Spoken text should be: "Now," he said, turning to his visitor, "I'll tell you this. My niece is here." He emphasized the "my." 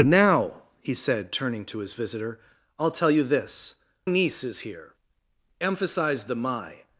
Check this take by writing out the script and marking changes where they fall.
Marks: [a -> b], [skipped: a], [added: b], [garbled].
"Now," he said, turning to his visitor, "I'll tell you this. [skipped: My] niece is here." [skipped: He] emphasized the "my."